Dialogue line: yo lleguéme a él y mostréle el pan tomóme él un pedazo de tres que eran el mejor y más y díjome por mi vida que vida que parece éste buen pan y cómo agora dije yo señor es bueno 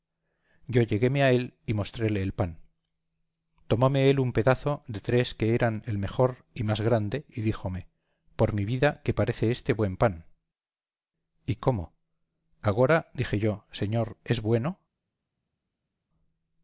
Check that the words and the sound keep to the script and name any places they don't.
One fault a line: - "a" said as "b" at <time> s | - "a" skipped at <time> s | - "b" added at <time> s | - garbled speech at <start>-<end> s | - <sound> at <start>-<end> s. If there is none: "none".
- "grande" added at 6.8 s
- "vida que" skipped at 9.1 s